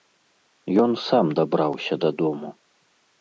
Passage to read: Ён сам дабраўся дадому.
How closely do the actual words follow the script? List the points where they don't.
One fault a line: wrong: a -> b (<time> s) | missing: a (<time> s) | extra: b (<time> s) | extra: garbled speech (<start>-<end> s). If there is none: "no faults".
no faults